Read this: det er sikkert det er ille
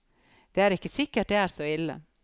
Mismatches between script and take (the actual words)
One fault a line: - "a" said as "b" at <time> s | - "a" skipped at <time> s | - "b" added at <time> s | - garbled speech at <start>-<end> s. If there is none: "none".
- "ikke" added at 0.8 s
- "så" added at 1.5 s